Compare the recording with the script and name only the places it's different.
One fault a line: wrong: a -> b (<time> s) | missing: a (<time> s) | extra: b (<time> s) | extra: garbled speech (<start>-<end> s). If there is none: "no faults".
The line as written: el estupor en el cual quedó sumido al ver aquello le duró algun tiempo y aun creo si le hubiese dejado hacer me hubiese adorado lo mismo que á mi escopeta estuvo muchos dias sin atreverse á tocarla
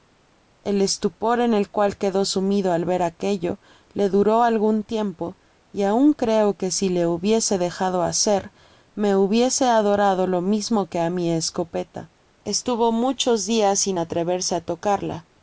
extra: que (6.6 s)